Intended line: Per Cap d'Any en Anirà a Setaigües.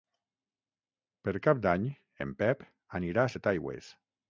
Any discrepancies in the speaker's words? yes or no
yes